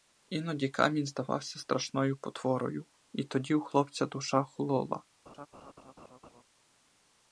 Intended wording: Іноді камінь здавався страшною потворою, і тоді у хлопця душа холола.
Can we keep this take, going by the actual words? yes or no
yes